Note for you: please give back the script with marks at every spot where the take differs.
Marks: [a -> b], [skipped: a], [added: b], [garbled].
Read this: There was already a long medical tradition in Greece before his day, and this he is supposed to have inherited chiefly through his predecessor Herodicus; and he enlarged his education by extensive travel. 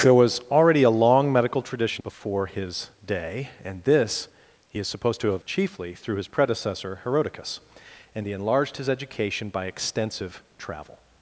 There was already a long medical tradition [skipped: in Greece] before his day, and this he is supposed to have [skipped: inherited] chiefly through his predecessor Herodicus; and he enlarged his education by extensive travel.